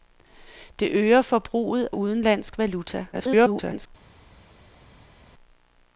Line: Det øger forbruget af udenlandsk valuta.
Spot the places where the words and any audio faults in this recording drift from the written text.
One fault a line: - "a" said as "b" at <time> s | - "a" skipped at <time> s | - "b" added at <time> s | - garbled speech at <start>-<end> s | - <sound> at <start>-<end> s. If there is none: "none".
- "af" skipped at 1.9 s
- garbled speech at 3.1-3.9 s